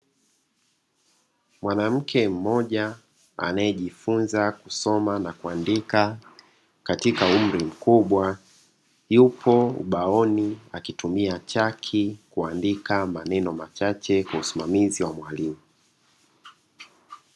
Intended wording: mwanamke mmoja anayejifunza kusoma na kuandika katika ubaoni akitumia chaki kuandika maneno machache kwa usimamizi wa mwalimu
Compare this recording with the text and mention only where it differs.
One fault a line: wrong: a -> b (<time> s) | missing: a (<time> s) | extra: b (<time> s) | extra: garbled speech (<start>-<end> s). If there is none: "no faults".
extra: umri mkubwa yupo (7.2 s)